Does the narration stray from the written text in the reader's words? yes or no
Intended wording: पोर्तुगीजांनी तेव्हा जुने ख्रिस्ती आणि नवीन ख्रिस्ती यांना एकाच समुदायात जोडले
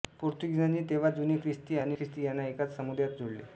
yes